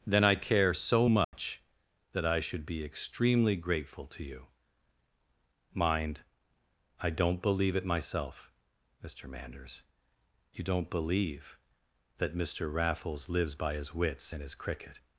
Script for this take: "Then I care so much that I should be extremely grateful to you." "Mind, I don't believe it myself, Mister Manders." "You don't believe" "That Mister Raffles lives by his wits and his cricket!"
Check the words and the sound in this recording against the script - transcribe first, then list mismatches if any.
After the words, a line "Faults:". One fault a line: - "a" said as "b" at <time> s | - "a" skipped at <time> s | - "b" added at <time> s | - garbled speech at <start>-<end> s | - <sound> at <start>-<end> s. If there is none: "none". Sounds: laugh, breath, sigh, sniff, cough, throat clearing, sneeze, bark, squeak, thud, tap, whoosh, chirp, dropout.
"Then I care so much that I should be extremely grateful to you." "Mind, I don't believe it myself, Mister Manders." "You don't believe" "That Mister Raffles lives by his wits and his cricket!"
Faults:
- dropout at 1.2-1.3 s